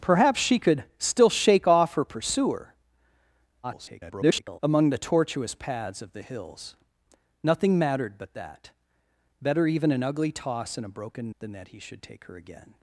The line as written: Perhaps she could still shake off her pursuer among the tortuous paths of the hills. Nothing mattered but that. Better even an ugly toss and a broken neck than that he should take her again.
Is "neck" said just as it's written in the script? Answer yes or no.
no